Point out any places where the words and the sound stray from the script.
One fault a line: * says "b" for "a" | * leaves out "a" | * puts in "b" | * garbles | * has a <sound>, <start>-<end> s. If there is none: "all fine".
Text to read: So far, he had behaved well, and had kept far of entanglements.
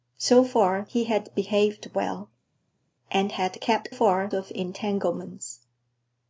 all fine